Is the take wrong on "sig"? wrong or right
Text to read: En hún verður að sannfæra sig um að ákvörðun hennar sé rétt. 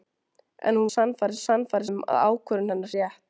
wrong